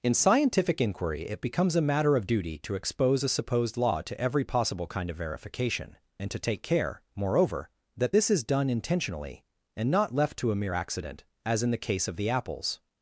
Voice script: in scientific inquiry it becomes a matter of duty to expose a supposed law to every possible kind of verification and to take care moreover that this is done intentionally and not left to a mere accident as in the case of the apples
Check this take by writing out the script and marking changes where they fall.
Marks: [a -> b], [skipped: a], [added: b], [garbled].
in scientific inquiry it becomes a matter of duty to expose a supposed law to every possible kind of verification and to take care moreover that this is done intentionally and not left to a mere accident as in the case of the apples